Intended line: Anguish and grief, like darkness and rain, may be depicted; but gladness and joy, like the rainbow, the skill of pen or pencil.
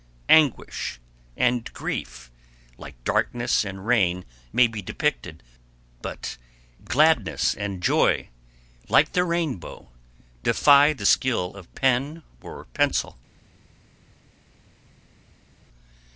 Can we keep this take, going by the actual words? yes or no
no